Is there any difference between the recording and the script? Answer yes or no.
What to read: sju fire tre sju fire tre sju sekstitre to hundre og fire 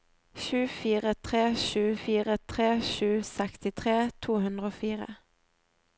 no